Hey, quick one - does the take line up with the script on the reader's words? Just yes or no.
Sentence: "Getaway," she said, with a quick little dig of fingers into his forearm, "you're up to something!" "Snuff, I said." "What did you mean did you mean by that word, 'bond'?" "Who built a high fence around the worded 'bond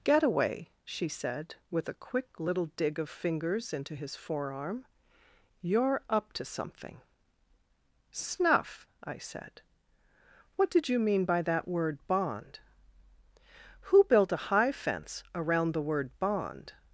no